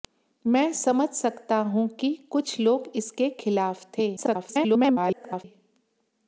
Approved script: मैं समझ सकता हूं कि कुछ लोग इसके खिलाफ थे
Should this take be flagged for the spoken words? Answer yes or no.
yes